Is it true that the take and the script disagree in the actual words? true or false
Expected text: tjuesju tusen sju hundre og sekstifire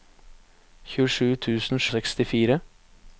true